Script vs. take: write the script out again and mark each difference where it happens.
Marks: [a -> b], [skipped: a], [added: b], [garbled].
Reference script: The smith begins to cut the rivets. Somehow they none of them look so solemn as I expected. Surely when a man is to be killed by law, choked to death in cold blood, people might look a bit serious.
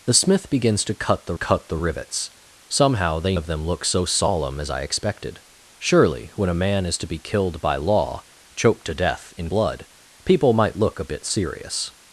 The smith begins to cut the [added: cut the] rivets. Somehow they [skipped: none] of them look so solemn as I expected. Surely when a man is to be killed by law, choked to death in [skipped: cold] blood, people might look a bit serious.